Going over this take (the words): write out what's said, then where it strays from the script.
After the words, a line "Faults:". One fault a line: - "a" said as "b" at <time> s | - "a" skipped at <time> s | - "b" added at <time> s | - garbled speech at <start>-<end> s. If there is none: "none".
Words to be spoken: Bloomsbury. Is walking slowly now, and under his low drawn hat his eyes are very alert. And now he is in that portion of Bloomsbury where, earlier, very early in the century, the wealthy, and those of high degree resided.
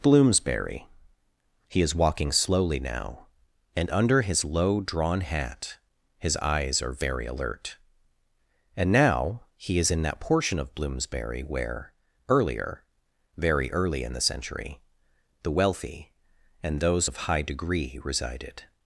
Bloomsbury. He is walking slowly now, and under his low drawn hat his eyes are very alert. And now he is in that portion of Bloomsbury where, earlier, very early in the century, the wealthy, and those of high degree resided.
Faults:
- "He" added at 1.7 s